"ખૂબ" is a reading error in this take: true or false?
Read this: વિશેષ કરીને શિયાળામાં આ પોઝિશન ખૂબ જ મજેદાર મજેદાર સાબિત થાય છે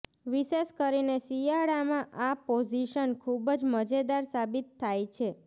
false